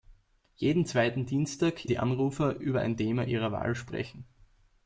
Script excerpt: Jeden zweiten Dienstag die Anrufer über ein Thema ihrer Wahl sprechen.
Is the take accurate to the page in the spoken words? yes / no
yes